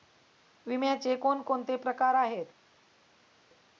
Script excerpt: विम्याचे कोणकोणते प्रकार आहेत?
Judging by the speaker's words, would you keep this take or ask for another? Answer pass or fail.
pass